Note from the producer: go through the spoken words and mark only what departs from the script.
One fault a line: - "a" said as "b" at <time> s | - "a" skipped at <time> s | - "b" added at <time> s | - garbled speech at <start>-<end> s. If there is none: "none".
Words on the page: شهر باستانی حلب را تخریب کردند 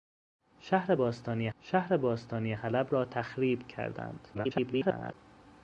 - "شهر باستانی" added at 1.6 s
- garbled speech at 4.3-5.1 s